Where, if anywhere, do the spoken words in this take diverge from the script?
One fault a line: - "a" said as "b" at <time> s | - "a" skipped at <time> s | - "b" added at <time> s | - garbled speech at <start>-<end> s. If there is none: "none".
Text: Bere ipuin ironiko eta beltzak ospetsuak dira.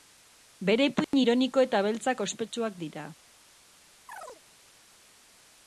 none